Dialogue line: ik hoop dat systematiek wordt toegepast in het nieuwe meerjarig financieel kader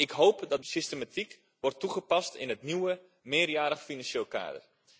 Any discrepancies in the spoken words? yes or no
no